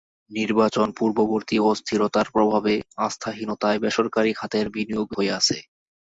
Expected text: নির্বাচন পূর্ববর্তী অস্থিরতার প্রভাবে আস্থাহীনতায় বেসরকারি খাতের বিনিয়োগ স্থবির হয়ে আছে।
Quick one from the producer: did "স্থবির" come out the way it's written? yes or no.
no